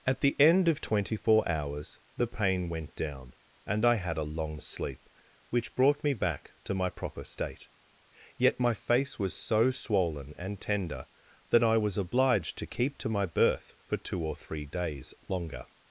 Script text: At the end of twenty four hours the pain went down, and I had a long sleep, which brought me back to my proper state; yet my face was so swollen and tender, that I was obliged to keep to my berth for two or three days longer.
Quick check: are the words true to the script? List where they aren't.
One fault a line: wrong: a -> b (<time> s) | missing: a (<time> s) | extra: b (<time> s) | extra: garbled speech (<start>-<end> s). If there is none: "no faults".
no faults